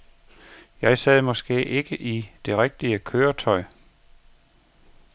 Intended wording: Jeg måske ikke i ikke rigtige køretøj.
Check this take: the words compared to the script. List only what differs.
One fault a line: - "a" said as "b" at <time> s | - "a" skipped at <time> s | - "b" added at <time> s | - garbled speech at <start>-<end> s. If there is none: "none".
- "sad" added at 1.0 s
- "ikke" said as "det" at 2.5 s